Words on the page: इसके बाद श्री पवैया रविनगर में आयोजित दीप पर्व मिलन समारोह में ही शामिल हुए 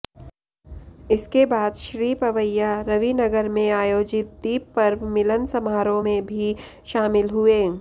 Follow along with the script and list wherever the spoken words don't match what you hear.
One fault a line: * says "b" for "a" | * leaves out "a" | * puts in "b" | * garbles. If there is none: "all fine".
* says "भी" for "ही"